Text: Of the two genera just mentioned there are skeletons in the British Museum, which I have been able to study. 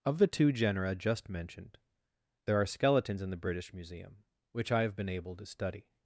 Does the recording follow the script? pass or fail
pass